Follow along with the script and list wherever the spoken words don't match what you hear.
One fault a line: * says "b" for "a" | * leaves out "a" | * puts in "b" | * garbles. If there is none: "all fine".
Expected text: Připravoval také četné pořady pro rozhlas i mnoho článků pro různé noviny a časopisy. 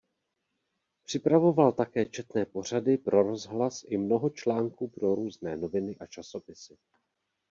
all fine